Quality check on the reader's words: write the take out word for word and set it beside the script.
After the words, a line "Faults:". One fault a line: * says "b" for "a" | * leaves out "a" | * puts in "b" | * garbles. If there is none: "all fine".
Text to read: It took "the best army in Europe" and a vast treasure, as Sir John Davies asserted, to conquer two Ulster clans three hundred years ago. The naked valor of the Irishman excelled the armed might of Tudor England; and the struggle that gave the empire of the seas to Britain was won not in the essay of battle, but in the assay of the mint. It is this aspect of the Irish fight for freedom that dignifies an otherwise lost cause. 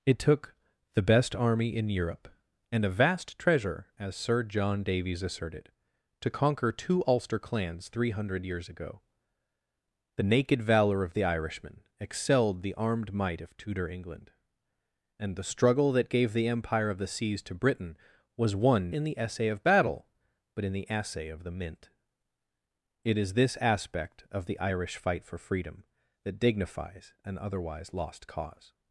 It took "the best army in Europe" and a vast treasure, as Sir John Davies asserted, to conquer two Ulster clans three hundred years ago. The naked valor of the Irishman excelled the armed might of Tudor England; and the struggle that gave the empire of the seas to Britain was won in the essay of battle, but in the assay of the mint. It is this aspect of the Irish fight for freedom that dignifies an otherwise lost cause.
Faults:
* leaves out "not"